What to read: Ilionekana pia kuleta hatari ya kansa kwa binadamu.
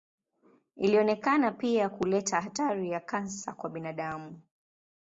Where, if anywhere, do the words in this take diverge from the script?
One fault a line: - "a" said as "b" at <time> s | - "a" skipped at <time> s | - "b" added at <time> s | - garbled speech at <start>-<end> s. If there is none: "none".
none